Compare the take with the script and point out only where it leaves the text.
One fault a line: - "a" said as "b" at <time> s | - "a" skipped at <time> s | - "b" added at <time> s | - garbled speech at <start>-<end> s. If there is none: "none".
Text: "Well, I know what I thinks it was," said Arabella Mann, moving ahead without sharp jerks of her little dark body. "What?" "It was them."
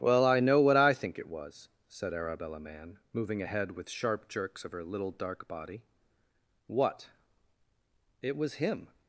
- "thinks" said as "think" at 0.9 s
- "without" said as "with" at 3.7 s
- "them" said as "him" at 8.5 s